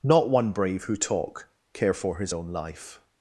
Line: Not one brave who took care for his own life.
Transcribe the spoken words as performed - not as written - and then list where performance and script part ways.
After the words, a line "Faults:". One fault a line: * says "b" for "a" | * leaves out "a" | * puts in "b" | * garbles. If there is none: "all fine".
Not one brave who talk care for his own life.
Faults:
* says "talk" for "took"